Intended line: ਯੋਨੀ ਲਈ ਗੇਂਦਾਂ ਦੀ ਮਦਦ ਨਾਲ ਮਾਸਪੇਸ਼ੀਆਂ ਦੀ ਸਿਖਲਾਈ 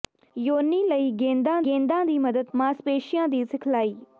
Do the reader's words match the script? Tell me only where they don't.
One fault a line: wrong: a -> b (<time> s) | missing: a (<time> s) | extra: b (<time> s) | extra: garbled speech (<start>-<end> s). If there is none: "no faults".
extra: ਗੇਂਦਾਂ (1.6 s)
missing: ਨਾਲ (2.5 s)